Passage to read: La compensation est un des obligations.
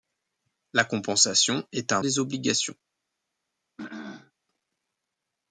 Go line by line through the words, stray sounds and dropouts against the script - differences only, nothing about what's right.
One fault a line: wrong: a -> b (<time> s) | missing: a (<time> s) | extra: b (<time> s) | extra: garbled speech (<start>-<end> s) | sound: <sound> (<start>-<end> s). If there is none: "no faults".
sound: throat clearing (3.8-4.3 s)